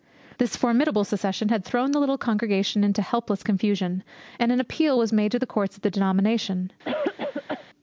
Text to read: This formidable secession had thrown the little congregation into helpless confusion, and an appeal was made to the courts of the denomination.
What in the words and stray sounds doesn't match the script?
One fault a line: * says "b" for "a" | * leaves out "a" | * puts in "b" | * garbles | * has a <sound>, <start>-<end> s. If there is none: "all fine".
* has a cough, 6.8-7.7 s